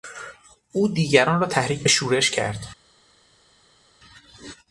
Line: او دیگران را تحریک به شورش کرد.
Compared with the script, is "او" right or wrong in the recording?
right